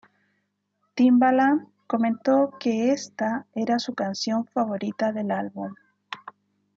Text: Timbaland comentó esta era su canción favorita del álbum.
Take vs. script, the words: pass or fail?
fail